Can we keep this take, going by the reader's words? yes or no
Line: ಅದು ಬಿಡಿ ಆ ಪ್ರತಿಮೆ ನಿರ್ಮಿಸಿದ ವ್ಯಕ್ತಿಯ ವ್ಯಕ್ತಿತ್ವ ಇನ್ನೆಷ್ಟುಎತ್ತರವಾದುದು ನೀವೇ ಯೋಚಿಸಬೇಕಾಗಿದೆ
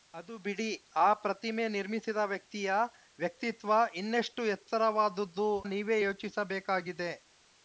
yes